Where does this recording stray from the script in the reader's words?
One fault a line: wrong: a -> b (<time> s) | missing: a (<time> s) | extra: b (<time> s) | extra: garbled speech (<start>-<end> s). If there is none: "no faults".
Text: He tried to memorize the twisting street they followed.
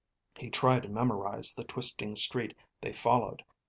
no faults